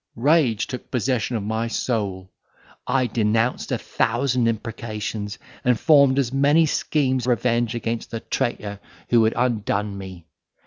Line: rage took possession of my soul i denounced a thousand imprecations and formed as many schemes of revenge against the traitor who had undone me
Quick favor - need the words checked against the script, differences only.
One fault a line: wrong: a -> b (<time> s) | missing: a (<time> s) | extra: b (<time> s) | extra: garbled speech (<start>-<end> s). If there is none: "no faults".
missing: of (7.3 s)